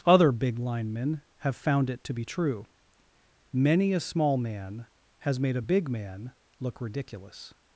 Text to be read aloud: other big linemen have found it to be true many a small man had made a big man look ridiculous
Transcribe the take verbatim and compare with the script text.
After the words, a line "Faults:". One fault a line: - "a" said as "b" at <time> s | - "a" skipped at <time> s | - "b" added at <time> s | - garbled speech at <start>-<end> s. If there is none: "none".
other big linemen have found it to be true many a small man has made a big man look ridiculous
Faults:
- "had" said as "has" at 5.2 s